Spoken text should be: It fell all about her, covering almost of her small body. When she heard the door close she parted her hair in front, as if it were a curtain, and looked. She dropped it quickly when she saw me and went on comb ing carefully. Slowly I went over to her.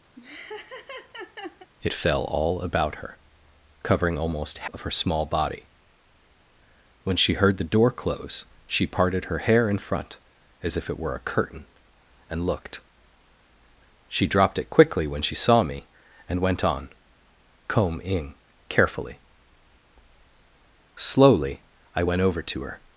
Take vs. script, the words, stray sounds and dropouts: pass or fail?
fail